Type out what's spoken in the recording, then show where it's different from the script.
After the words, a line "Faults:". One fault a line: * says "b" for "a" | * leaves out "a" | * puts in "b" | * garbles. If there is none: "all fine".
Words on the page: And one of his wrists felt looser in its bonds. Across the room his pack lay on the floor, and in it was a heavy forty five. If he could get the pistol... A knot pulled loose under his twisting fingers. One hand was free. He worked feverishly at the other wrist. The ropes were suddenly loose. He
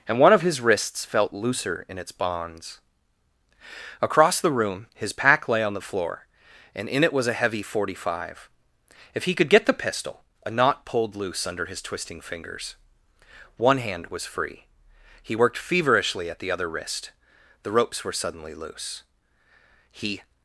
And one of his wrists felt looser in its bonds. Across the room his pack lay on the floor, and in it was a heavy forty five. If he could get the pistol... A knot pulled loose under his twisting fingers. One hand was free. He worked feverishly at the other wrist. The ropes were suddenly loose. He
Faults:
all fine